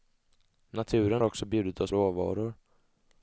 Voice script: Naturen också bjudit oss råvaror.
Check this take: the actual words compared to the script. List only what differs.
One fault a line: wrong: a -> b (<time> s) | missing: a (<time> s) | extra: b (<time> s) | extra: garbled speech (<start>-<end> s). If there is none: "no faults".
no faults